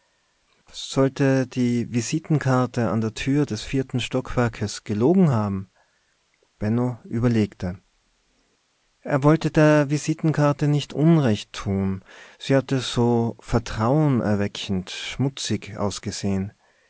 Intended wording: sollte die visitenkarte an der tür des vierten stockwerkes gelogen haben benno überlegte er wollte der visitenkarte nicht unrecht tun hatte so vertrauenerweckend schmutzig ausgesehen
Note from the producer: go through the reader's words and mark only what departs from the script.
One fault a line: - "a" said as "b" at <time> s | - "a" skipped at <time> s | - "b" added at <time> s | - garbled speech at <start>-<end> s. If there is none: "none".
- "sie" added at 12.4 s